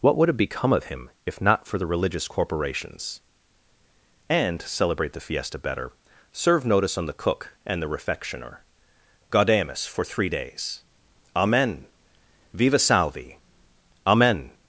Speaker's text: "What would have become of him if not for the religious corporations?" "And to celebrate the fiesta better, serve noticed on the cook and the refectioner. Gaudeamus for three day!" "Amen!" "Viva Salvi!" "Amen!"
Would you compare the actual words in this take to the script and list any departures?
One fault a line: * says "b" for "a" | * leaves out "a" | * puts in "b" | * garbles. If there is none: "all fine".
* says "notice" for "noticed"
* says "days" for "day"